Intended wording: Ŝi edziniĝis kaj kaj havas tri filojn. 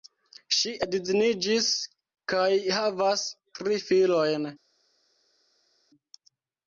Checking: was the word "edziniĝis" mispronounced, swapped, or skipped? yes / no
no